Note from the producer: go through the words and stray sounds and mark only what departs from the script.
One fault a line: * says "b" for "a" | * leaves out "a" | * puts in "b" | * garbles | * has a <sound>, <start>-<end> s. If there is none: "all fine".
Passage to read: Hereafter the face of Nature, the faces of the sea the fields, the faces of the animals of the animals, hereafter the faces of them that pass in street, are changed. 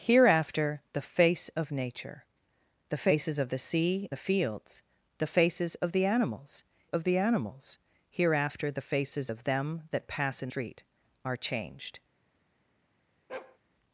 * has a bark, 13.3-13.6 s